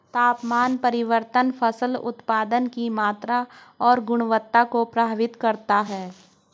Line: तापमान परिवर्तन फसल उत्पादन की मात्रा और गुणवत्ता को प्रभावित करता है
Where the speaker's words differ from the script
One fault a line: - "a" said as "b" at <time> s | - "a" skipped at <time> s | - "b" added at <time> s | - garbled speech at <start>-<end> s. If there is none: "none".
none